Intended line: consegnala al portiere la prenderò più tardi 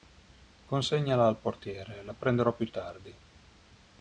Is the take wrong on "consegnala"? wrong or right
right